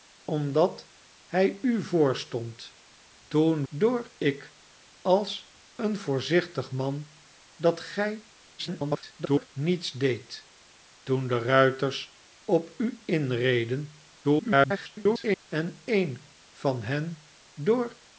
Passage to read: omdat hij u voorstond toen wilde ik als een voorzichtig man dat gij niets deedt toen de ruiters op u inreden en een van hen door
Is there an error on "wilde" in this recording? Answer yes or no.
yes